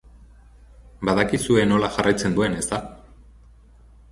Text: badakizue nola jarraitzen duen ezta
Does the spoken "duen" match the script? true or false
true